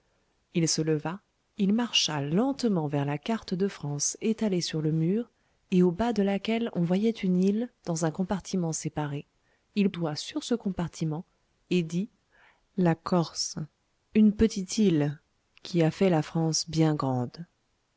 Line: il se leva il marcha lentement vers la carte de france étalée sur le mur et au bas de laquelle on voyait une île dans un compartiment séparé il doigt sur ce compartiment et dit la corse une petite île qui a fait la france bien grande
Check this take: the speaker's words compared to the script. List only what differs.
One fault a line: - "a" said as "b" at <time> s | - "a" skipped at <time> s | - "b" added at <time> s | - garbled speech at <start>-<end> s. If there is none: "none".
none